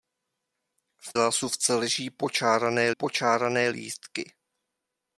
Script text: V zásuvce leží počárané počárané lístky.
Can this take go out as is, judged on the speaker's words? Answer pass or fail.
pass